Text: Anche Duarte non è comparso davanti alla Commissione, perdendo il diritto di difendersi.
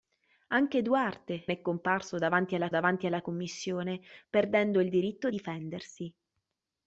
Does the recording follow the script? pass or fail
fail